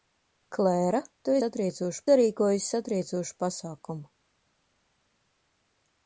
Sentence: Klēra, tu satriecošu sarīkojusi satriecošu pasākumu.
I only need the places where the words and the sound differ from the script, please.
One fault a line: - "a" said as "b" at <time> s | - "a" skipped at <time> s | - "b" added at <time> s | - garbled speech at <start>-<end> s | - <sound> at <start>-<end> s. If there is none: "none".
none